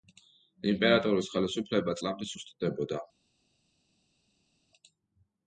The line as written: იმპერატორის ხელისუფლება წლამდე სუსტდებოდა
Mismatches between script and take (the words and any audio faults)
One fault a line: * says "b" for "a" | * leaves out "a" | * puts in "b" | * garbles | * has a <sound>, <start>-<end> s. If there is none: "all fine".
all fine